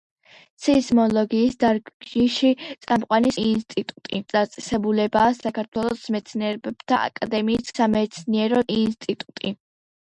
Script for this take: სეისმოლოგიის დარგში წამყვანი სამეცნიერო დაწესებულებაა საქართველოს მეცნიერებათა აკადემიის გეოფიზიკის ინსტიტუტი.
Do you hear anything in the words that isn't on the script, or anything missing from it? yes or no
yes